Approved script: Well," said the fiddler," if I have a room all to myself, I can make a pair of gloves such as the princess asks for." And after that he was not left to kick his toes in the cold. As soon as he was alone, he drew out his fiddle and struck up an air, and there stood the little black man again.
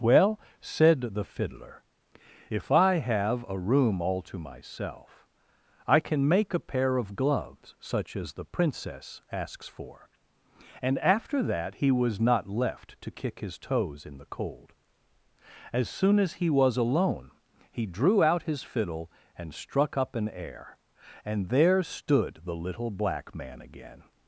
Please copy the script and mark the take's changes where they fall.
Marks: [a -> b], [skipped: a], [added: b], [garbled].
Well," said the fiddler," if I have a room all to myself, I can make a pair of gloves such as the princess asks for." And after that he was not left to kick his toes in the cold. As soon as he was alone, he drew out his fiddle and struck up an air, and there stood the little black man again.